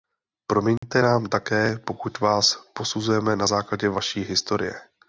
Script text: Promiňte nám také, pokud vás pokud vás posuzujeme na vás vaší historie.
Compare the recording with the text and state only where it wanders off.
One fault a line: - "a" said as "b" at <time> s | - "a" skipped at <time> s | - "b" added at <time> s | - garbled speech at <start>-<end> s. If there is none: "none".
- "pokud vás" skipped at 2.6 s
- "vás" said as "základě" at 3.4 s